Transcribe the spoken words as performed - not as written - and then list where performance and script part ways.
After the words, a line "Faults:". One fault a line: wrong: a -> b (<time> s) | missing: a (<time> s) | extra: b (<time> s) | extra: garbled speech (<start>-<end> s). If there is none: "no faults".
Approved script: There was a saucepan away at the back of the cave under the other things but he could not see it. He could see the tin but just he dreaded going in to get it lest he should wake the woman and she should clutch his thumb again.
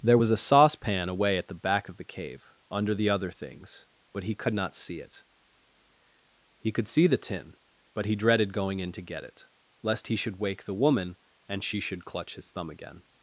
There was a saucepan away at the back of the cave under the other things but he could not see it. He could see the tin but he dreaded going in to get it lest he should wake the woman and she should clutch his thumb again.
Faults:
missing: just (8.0 s)